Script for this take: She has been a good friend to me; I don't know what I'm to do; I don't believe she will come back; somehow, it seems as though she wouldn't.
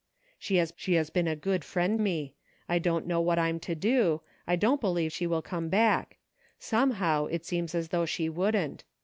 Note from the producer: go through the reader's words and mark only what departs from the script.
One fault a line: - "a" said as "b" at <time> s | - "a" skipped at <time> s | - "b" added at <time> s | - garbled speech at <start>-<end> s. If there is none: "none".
- "she has" added at 0.8 s
- "to" skipped at 2.0 s